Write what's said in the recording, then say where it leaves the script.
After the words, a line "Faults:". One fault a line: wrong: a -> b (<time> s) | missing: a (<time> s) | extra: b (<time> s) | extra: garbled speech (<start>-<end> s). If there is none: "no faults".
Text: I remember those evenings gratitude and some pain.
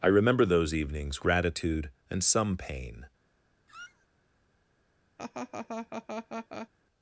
I remember those evenings gratitude and some pain.
Faults:
no faults